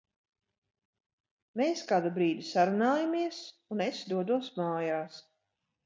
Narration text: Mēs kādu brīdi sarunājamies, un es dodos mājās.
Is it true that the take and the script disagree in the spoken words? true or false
false